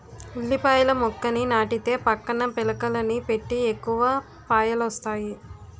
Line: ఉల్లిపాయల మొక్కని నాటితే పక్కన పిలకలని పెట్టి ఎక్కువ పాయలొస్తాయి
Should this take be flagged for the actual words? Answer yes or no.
no